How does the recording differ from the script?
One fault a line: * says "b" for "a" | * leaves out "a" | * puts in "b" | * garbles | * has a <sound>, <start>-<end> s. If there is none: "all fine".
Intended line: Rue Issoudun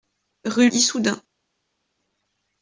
all fine